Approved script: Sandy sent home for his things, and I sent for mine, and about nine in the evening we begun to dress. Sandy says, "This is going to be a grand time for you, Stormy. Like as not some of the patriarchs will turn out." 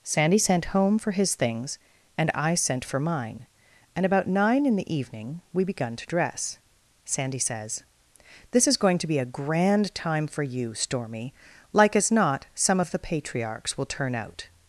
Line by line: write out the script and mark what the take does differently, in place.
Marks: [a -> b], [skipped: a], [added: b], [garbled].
Sandy sent home for his things, and I sent for mine, and about nine in the evening we begun to dress. Sandy says, "This is going to be a grand time for you, Stormy. Like as not some of the patriarchs will turn out."